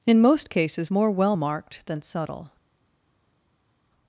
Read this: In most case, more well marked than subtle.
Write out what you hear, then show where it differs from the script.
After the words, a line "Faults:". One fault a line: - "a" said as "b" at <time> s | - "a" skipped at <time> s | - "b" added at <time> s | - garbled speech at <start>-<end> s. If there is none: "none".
In most cases, more well marked than subtle.
Faults:
- "case" said as "cases" at 0.5 s